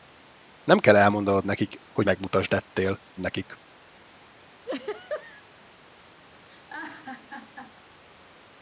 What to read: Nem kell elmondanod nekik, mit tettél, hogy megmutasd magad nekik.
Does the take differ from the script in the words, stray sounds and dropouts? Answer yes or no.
yes